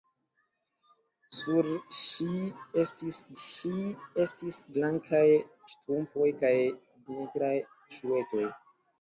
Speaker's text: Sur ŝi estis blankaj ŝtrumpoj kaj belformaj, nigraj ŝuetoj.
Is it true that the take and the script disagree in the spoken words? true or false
true